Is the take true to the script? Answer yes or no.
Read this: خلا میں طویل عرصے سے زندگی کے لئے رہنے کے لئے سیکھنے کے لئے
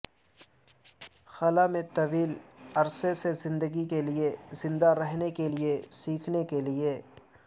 no